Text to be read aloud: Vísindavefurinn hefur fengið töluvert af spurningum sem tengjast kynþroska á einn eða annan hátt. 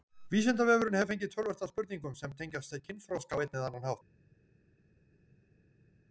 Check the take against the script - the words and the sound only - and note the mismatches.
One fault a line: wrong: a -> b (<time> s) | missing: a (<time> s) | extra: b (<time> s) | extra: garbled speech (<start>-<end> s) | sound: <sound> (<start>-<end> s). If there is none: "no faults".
no faults